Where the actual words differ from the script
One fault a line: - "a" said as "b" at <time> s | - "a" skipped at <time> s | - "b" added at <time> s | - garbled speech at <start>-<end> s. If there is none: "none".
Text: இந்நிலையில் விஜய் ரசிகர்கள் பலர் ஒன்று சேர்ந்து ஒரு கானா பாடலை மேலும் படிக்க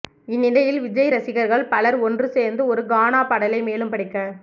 none